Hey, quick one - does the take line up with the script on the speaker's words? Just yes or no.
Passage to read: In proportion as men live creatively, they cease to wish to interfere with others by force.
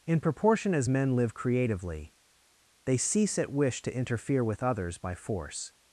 no